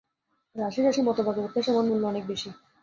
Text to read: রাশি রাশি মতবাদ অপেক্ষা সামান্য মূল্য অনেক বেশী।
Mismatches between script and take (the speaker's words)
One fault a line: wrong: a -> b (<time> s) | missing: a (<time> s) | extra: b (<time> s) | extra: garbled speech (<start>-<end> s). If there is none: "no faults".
no faults